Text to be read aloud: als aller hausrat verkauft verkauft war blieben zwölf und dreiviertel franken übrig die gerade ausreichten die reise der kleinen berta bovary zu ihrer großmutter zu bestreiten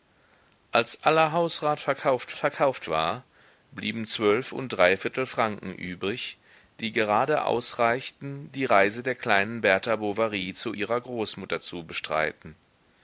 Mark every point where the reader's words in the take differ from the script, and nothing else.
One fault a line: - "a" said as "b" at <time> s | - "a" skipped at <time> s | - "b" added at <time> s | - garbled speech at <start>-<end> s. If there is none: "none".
none